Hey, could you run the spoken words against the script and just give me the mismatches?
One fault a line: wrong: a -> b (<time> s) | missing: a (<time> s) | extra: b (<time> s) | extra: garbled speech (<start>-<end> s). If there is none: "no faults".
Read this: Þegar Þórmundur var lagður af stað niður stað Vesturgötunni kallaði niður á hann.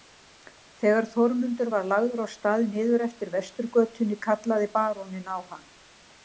wrong: stað -> eftir (3.1 s)
wrong: niður -> baróninn (4.8 s)